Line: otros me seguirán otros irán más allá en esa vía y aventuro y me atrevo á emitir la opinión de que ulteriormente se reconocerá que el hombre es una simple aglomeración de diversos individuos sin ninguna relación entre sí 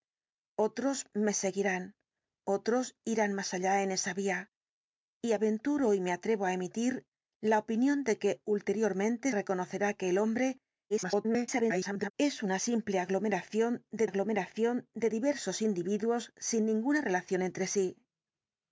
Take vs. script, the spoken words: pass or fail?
fail